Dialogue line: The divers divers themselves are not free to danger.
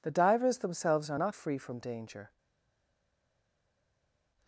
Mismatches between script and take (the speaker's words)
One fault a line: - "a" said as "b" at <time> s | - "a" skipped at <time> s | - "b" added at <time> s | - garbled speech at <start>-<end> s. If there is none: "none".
- "divers" skipped at 0.6 s
- "to" said as "from" at 1.6 s